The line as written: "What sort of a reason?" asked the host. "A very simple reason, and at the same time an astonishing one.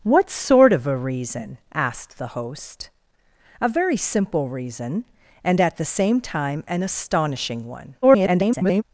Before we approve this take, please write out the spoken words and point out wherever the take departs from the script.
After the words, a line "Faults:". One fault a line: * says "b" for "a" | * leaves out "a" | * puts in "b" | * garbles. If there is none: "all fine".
"What sort of a reason?" asked the host. "A very simple reason, and at the same time an astonishing one. [garbled]
Faults:
* garbles